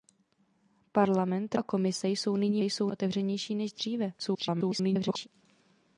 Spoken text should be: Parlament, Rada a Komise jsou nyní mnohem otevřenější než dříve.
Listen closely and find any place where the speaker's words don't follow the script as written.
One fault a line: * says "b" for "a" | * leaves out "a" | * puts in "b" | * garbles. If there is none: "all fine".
* leaves out "Rada"
* says "jsou" for "mnohem"
* garbles